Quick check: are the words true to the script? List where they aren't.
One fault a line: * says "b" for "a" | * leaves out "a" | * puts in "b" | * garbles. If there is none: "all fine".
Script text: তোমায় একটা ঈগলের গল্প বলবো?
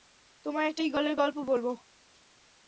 all fine